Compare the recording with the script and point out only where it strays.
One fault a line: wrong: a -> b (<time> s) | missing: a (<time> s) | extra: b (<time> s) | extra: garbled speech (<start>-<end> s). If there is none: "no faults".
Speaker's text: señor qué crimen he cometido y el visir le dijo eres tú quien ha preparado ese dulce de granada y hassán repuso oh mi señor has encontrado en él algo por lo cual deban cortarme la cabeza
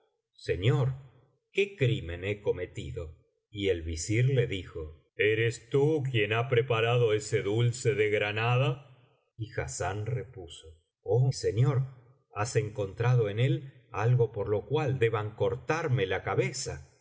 missing: mi (11.3 s)